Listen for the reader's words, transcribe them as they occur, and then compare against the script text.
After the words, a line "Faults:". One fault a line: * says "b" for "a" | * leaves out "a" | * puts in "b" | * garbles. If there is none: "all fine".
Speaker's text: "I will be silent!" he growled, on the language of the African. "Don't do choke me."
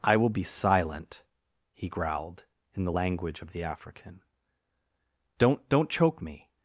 "I will be silent!" he growled, in the language of the African. "Don't don't choke me."
Faults:
* says "in" for "on"
* says "don't" for "do"